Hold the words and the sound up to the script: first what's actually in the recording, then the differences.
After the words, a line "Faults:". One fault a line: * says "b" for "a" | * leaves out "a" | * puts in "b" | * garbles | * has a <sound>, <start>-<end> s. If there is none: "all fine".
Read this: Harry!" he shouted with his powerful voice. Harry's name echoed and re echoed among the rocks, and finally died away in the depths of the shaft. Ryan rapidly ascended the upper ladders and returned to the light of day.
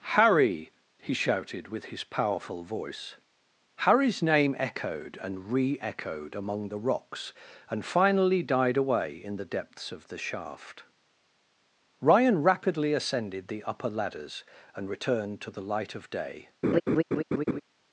Harry!" he shouted with his powerful voice. Harry's name echoed and re echoed among the rocks, and finally died away in the depths of the shaft. Ryan rapidly ascended the upper ladders and returned to the light of day.
Faults:
* has a laugh, 16.6-17.6 s